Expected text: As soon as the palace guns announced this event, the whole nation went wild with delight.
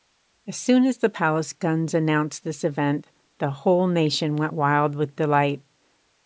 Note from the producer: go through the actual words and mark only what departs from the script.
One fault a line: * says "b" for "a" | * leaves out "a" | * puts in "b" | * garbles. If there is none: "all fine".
all fine